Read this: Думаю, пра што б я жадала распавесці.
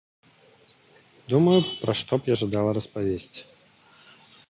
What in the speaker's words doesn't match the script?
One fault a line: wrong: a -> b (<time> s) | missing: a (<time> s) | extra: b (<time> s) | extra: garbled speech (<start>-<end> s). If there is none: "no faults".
no faults